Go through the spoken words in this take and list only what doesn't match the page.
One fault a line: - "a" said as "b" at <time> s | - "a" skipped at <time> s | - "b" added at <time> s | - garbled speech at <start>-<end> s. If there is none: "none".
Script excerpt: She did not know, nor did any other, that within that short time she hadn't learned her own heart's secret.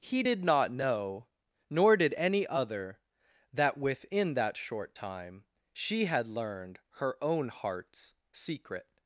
- "She" said as "He" at 0.0 s
- "hadn't" said as "had" at 6.0 s